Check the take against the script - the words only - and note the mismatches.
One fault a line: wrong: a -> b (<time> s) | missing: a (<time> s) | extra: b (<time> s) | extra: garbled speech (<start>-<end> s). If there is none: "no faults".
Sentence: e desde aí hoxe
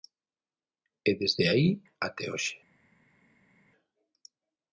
extra: até (2.1 s)